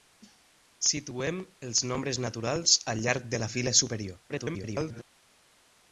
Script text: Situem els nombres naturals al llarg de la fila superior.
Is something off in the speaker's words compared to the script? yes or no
yes